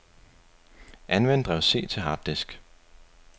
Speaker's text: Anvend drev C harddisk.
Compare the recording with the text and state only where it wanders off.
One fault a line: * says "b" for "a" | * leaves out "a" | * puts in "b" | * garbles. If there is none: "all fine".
* puts in "til"